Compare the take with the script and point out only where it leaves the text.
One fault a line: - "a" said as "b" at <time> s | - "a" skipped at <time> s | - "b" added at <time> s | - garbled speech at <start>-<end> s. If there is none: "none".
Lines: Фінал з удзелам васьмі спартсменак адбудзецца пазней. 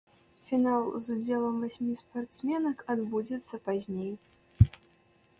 none